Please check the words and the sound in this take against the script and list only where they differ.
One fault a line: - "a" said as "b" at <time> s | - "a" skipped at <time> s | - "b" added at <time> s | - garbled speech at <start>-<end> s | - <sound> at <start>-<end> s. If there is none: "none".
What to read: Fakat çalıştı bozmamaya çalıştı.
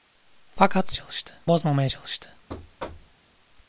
- thud at 2.5-3.2 s